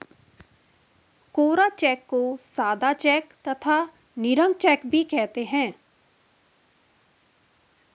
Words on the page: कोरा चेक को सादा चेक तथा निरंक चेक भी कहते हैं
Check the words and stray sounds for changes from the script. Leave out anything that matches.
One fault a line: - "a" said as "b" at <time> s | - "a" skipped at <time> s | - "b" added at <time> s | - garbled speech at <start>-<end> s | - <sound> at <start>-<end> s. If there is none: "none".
none